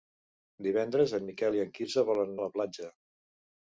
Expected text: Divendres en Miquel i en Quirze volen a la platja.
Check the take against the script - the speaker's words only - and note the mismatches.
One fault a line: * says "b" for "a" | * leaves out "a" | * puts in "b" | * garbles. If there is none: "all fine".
all fine